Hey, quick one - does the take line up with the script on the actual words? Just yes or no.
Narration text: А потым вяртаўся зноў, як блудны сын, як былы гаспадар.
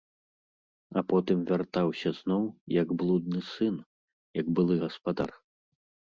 yes